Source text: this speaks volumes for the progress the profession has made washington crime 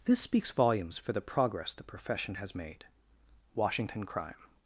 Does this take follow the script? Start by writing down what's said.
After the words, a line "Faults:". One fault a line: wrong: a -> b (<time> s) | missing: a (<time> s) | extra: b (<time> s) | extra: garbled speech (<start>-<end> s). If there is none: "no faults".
this speaks volumes for the progress the profession has made washington crime
Faults:
no faults